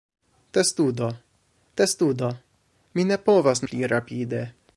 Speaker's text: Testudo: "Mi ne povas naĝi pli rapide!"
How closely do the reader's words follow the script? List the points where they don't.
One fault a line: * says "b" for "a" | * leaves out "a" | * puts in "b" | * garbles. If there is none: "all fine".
* puts in "testudo"
* leaves out "naĝi"